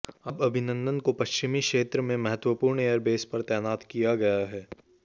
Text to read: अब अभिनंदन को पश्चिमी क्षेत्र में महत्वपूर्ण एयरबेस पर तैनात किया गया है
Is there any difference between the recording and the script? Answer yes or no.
no